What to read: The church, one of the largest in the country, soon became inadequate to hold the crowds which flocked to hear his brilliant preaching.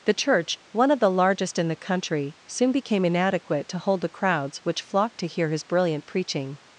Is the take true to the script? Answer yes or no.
yes